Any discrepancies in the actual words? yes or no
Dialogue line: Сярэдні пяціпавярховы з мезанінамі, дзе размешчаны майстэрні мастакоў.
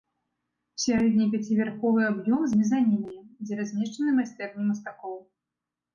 yes